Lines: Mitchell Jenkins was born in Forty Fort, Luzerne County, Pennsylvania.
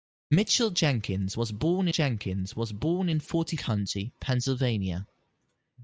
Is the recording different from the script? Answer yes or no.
yes